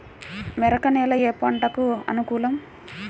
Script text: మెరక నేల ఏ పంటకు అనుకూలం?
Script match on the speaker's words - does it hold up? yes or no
yes